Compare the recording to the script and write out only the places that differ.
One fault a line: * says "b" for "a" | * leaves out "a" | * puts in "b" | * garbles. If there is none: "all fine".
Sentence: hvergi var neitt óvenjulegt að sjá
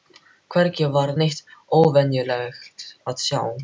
all fine